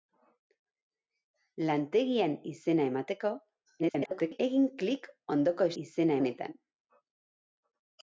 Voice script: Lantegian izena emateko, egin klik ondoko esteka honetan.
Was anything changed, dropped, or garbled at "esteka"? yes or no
yes